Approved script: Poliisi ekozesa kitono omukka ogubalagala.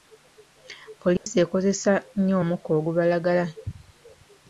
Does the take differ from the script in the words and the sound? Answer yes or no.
yes